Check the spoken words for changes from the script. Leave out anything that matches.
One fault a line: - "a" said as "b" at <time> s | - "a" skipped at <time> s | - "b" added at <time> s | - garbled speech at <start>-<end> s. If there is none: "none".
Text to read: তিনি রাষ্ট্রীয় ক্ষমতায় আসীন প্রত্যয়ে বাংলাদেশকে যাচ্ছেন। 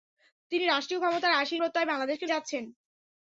none